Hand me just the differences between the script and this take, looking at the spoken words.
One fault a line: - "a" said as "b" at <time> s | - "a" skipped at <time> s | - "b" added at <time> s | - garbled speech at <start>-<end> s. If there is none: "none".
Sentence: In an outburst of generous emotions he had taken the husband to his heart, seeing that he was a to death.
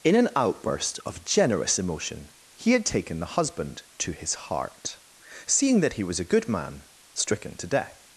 - "emotions" said as "emotion" at 1.8 s
- "good man stricken" added at 6.2 s